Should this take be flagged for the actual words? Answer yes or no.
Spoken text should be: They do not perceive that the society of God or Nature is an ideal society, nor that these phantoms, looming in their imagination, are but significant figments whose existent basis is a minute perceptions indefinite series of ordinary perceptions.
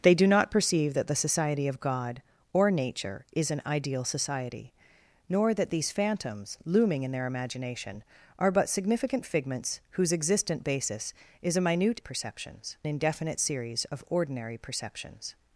no